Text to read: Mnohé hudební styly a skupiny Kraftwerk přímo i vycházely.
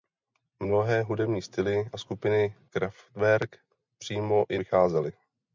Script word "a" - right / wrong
right